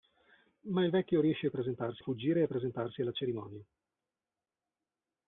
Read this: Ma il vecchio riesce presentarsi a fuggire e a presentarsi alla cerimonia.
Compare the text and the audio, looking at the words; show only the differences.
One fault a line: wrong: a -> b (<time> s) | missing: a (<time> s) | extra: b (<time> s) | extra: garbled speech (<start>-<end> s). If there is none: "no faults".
no faults